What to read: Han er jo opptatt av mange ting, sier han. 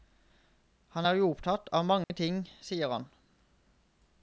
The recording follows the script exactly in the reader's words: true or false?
true